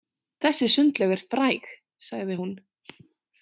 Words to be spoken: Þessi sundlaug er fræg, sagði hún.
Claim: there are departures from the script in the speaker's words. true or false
false